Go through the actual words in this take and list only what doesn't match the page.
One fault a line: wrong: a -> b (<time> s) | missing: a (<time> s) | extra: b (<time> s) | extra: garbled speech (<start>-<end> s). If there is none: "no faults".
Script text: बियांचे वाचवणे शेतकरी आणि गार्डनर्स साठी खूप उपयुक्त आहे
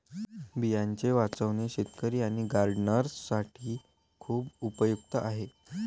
no faults